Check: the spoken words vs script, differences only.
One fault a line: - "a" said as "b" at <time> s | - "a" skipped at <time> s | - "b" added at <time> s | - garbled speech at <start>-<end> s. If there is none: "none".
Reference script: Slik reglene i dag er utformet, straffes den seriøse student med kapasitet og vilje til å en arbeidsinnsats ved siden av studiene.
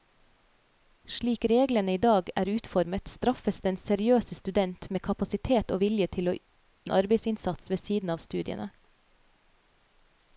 none